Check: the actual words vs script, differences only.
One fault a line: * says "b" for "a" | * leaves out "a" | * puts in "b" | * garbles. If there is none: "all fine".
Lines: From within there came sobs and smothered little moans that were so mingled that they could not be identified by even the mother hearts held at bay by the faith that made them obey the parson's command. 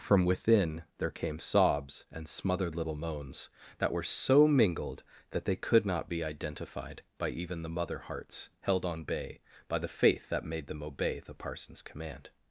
* says "on" for "at"